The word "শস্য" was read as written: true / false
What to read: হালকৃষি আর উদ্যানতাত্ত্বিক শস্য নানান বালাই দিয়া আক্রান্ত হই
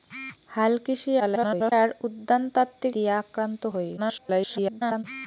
false